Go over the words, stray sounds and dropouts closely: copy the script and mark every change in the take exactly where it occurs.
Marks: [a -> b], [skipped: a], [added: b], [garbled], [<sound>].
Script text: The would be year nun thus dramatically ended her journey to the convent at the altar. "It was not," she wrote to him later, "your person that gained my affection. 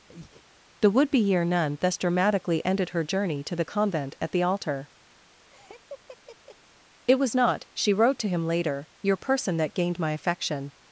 [breath] The would be year nun thus dramatically ended her journey to the convent at the altar. [laugh] "It was not," she wrote to him later, "your person that gained my affection.